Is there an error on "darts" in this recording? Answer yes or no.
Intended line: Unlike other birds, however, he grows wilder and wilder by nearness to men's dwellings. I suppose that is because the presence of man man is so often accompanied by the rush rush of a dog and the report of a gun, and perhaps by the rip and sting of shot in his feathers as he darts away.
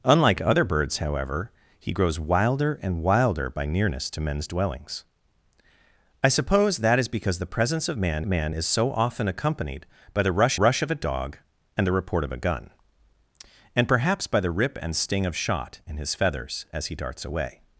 no